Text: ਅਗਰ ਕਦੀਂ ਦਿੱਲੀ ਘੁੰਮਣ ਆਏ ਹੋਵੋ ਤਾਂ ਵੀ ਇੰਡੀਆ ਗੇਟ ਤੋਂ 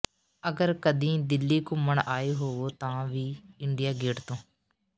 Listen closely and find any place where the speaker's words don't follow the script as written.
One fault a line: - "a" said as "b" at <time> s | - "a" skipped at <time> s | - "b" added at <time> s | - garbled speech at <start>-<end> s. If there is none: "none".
none